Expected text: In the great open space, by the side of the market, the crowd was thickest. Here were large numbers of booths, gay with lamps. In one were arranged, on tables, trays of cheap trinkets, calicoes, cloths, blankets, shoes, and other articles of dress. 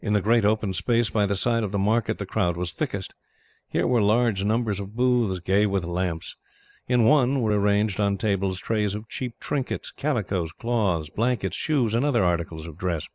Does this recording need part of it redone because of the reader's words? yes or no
no